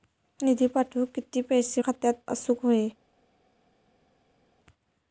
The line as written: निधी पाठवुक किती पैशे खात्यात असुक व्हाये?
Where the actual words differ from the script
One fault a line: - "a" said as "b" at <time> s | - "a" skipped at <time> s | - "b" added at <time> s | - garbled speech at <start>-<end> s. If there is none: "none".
none